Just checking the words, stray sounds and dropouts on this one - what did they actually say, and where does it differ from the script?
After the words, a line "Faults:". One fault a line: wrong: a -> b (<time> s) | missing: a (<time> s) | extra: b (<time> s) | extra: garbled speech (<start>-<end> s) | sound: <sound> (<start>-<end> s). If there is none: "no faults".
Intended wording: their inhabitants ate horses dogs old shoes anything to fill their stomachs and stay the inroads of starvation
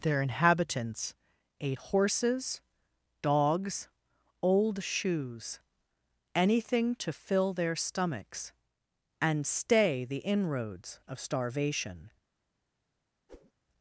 their inhabitants ate horses dogs old shoes anything to fill their stomachs and stay the inroads of starvation
Faults:
sound: whoosh (13.3-13.5 s)